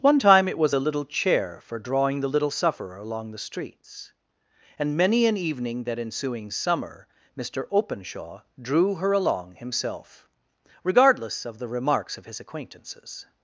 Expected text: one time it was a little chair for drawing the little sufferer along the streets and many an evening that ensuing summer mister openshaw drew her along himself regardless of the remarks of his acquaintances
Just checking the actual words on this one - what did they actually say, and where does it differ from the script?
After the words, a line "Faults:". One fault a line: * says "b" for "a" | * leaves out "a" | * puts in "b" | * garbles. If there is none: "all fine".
one time it was a little chair for drawing the little sufferer along the streets and many an evening that ensuing summer mister openshaw drew her along himself regardless of the remarks of his acquaintances
Faults:
all fine